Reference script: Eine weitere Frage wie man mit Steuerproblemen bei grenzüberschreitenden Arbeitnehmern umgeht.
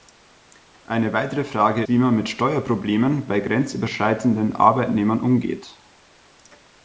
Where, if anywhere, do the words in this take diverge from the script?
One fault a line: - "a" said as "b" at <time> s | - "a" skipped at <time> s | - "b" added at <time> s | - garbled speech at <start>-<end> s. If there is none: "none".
none